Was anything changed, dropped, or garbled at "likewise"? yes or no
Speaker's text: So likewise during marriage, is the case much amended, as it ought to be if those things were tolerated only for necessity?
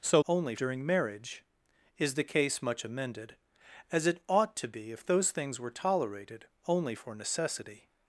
yes